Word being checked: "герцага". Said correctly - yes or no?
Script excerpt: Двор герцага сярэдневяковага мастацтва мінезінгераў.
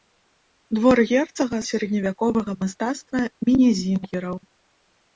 yes